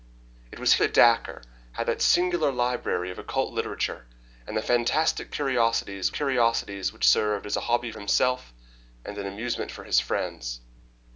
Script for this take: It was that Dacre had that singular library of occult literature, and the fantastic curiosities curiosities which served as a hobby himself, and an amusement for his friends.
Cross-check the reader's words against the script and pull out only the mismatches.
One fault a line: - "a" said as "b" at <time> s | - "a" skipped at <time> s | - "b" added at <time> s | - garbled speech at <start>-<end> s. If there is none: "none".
none